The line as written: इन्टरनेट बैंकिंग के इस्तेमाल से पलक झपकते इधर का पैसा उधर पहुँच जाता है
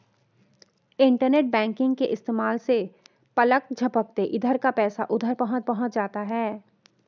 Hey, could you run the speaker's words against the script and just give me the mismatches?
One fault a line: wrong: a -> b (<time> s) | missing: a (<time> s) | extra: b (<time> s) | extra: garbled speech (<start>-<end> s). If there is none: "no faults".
extra: पहुँच (5.6 s)